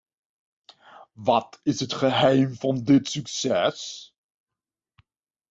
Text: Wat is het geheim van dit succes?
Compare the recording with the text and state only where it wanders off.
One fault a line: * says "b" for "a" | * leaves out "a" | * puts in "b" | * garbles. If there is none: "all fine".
all fine